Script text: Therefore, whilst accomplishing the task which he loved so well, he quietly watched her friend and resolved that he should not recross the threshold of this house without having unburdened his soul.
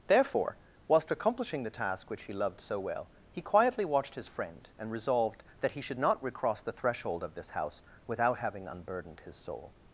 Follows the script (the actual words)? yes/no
no